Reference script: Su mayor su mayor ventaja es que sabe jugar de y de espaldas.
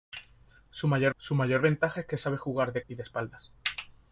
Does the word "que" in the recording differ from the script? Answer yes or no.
no